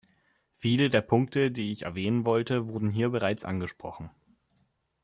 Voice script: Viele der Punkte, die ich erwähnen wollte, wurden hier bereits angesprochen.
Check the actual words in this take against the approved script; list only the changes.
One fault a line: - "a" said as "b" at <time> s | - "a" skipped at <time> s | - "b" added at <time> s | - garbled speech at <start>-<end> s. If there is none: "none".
none